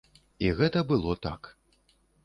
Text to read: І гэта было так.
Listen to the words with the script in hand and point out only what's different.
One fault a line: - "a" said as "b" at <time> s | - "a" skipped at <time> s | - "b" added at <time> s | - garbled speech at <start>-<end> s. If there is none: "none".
none